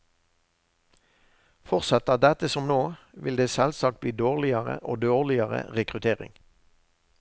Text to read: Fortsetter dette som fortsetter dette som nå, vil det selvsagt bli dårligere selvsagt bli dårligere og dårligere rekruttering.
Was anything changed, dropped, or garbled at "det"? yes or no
no